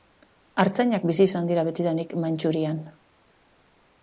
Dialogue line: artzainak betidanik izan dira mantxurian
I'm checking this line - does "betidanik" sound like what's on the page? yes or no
no